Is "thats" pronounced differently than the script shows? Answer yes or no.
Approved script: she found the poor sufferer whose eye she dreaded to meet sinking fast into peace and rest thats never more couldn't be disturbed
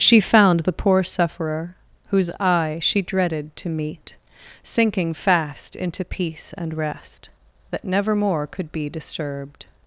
yes